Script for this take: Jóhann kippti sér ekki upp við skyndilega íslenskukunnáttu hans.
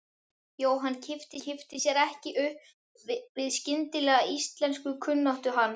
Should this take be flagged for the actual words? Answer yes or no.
yes